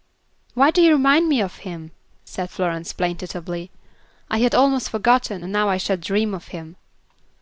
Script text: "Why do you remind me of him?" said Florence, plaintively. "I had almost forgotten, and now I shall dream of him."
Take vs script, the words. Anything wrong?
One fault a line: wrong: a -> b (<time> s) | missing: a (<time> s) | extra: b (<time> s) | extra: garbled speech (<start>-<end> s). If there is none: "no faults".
no faults